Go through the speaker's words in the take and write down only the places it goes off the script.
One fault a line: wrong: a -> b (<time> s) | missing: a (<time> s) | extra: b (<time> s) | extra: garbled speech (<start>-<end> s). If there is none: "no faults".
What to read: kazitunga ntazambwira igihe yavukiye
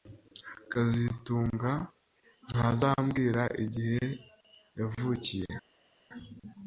no faults